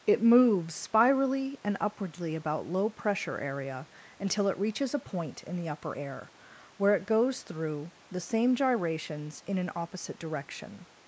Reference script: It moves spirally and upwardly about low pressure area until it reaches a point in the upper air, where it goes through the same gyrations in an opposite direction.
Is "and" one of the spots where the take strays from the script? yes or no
no